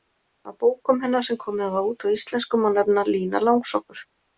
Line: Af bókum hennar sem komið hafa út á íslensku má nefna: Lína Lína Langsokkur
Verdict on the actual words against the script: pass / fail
fail